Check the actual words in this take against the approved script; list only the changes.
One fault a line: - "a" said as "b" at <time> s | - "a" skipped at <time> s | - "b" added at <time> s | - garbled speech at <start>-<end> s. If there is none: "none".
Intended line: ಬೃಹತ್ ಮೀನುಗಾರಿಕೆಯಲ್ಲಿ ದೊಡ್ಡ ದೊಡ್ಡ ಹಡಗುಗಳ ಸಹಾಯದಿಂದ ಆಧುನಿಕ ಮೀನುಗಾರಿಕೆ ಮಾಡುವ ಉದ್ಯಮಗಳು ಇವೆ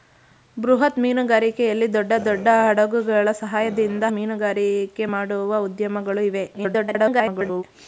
- "ಆಧುನಿಕ" skipped at 4.0 s
- garbled speech at 6.5-7.6 s